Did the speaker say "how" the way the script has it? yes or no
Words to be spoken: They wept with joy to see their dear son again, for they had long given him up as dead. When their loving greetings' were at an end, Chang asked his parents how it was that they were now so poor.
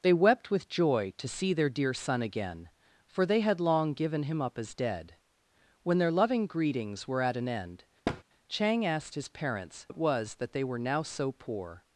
no